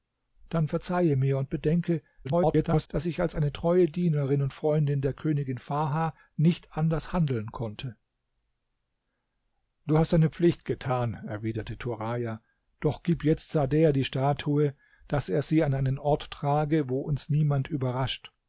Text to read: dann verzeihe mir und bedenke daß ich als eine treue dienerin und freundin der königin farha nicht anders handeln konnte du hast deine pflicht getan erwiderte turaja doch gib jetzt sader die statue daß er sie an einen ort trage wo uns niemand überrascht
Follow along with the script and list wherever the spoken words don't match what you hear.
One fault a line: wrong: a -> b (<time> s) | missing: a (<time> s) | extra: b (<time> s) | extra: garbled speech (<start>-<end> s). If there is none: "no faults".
extra: garbled speech (2.2-2.9 s)